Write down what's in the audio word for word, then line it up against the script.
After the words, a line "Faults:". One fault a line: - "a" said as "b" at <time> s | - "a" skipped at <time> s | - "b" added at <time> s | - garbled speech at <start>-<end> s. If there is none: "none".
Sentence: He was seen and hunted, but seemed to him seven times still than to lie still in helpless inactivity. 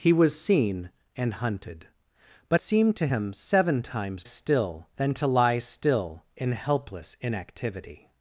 He was seen and hunted, but seemed to him seven times still than to lie still in helpless inactivity.
Faults:
none